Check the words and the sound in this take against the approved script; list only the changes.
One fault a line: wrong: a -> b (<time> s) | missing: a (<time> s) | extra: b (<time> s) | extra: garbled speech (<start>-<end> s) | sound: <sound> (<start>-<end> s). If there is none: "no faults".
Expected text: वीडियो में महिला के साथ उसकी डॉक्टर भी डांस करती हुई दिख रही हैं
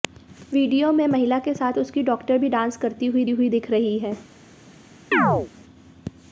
extra: हुई (3.3 s)
sound: chirp (5.1-5.5 s)